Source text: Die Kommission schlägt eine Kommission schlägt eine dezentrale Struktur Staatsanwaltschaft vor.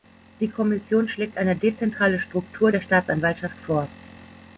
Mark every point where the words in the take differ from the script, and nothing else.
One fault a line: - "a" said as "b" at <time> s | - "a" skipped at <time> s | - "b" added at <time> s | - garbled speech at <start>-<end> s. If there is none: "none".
- "Kommission schlägt eine" skipped at 1.6 s
- "der" added at 2.7 s